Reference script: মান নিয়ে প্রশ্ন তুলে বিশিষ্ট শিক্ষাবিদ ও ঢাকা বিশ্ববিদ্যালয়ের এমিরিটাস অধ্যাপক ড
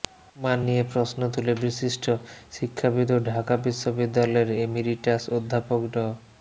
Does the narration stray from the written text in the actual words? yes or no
no